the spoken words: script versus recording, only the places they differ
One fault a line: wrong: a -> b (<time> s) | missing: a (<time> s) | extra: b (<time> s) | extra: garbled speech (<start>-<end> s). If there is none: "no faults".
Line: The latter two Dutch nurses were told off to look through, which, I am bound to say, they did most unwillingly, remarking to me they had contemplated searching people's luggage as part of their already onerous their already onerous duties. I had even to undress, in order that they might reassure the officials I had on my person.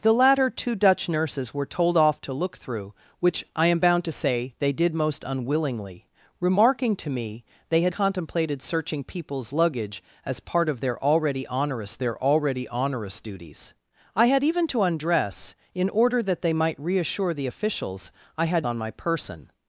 no faults